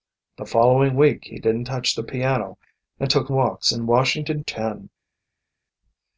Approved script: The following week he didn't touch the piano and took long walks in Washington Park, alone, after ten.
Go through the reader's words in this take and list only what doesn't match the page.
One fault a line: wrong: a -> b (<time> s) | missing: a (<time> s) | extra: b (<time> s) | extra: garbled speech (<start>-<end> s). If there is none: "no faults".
missing: long (3.3 s)
missing: Park alone after (4.4 s)